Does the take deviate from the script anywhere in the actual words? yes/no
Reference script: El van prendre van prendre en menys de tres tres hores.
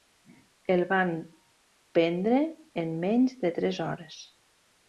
yes